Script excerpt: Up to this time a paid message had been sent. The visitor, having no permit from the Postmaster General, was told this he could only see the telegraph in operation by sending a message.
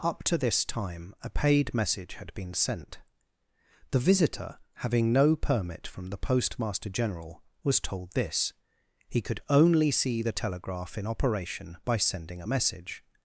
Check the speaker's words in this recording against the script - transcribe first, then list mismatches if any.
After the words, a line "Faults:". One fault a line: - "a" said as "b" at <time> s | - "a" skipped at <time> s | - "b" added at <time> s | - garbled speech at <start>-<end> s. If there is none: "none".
Up to this time a paid message had been sent. The visitor, having no permit from the Postmaster General, was told this he could only see the telegraph in operation by sending a message.
Faults:
none